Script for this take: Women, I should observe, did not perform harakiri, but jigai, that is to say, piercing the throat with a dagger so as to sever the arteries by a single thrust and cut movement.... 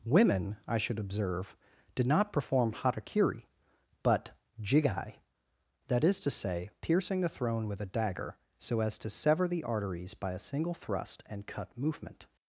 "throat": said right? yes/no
no